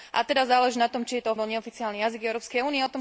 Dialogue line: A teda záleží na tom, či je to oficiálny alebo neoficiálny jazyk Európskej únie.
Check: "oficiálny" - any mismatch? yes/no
yes